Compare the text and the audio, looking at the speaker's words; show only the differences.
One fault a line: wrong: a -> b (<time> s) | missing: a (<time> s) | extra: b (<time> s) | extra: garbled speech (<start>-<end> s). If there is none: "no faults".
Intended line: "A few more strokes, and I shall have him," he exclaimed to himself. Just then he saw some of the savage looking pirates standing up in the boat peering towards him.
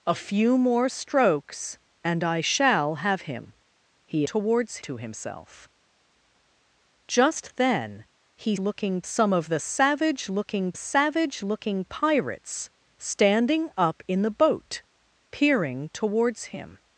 wrong: exclaimed -> towards (4.2 s)
wrong: saw -> looking (8.6 s)
extra: savage looking (10.7 s)